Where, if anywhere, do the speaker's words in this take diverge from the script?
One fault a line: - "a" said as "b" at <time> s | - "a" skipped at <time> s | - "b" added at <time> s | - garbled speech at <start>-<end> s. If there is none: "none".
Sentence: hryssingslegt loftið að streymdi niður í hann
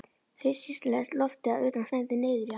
- "utan" added at 1.7 s